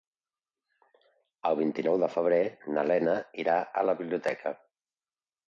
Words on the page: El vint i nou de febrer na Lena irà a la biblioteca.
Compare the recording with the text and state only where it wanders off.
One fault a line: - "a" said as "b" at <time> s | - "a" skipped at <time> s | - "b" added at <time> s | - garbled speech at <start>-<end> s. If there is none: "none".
none